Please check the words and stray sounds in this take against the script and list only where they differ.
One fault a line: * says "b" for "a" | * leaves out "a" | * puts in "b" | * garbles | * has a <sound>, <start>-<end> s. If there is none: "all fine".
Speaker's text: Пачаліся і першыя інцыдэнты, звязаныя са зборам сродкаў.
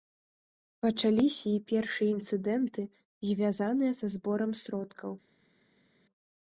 all fine